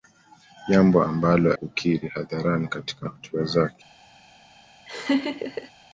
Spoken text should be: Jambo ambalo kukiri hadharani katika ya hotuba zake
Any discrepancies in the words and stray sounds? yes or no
yes